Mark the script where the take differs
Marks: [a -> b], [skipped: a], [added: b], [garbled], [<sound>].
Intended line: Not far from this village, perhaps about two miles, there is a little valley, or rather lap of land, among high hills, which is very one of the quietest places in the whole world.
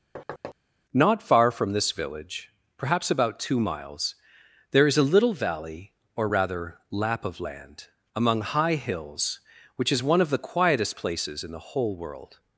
[thud] Not far from this village, perhaps about two miles, there is a little valley, or rather lap of land, among high hills, which is [skipped: very] one of the quietest places in the whole world.